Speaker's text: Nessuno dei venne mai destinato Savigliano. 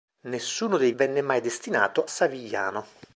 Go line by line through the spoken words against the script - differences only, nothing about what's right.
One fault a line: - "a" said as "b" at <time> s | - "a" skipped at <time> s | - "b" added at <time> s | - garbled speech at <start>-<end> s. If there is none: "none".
none